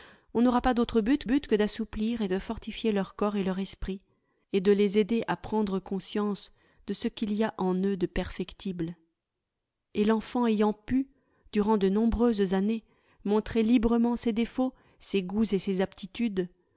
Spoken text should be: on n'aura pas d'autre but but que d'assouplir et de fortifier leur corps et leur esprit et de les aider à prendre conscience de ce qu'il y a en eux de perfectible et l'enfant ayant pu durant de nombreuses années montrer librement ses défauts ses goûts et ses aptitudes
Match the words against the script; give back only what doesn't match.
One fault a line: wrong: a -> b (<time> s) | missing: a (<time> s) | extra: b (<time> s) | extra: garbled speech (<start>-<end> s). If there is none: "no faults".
no faults